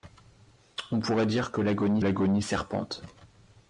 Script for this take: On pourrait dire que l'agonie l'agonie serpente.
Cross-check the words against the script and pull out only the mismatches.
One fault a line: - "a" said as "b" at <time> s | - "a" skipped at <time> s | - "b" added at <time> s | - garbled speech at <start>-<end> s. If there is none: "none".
none